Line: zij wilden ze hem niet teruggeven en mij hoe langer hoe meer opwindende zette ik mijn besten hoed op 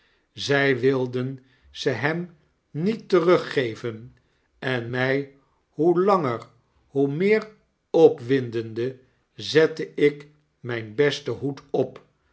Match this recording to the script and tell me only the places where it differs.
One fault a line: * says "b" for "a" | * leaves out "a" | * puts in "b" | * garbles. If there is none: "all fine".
all fine